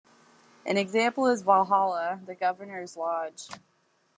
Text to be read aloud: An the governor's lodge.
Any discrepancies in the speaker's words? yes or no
yes